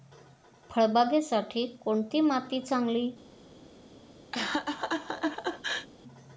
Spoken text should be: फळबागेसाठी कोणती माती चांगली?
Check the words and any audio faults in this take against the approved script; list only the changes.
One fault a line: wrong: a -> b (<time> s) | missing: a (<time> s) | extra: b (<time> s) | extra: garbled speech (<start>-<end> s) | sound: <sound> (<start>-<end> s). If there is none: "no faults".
sound: laugh (4.3-5.9 s)